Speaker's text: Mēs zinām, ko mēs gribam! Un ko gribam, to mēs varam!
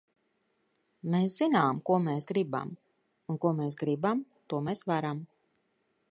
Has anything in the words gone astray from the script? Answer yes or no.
yes